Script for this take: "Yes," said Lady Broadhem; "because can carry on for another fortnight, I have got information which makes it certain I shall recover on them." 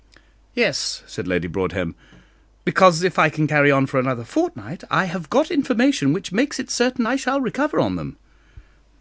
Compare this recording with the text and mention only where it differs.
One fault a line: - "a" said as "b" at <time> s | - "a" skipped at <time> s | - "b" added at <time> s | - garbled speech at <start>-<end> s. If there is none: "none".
- "if I" added at 3.0 s